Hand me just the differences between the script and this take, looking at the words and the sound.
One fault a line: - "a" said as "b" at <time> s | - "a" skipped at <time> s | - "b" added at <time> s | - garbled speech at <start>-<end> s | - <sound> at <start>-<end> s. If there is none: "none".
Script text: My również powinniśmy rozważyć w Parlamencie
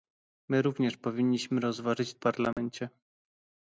- dropout at 2.5-2.6 s